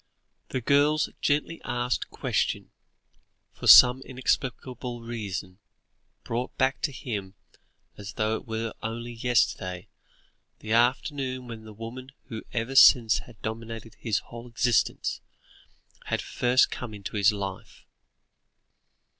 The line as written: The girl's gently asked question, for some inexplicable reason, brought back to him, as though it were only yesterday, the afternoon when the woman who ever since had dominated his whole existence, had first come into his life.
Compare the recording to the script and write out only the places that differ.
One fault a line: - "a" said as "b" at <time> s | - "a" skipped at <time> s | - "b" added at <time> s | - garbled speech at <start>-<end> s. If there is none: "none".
none